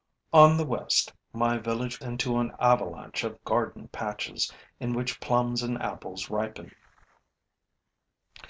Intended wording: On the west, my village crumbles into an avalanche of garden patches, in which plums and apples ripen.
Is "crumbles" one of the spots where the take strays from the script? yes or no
yes